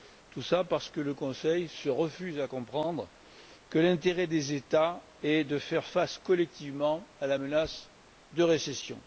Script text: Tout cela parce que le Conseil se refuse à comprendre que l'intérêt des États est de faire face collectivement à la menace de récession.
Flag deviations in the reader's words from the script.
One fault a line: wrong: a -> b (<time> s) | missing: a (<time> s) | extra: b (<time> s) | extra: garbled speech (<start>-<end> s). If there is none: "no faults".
no faults